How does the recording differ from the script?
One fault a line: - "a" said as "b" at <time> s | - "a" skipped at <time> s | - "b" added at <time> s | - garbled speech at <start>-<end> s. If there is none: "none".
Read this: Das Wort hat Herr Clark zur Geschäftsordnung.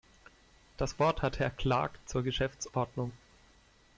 none